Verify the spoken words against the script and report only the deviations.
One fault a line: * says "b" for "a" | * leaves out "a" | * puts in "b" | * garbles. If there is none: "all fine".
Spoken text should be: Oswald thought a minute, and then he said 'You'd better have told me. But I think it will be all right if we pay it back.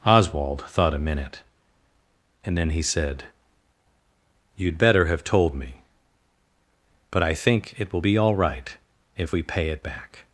all fine